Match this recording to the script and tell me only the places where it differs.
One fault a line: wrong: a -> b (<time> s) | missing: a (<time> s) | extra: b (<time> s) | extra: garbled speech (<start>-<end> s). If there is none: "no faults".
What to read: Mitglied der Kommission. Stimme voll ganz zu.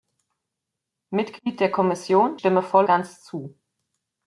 no faults